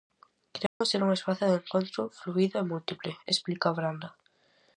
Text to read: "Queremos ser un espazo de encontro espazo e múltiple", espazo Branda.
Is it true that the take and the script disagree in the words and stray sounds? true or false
true